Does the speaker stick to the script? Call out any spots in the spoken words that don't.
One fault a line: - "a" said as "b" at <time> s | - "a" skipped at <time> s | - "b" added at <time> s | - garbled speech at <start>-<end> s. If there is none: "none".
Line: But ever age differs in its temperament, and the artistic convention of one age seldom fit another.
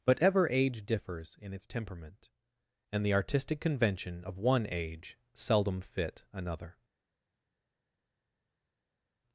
none